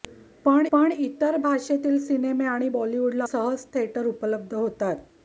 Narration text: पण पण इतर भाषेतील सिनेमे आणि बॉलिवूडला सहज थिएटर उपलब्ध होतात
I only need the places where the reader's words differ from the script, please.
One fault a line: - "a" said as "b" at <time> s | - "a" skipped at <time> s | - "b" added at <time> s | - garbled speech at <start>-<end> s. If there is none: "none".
none